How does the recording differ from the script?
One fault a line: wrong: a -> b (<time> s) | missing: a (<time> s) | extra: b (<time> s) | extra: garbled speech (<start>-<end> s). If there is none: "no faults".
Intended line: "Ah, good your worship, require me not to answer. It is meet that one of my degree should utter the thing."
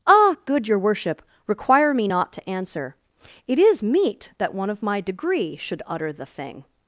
no faults